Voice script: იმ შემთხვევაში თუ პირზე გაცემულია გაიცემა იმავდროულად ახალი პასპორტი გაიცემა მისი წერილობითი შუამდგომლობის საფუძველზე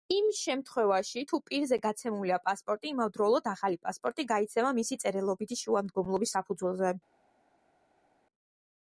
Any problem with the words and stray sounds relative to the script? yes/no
yes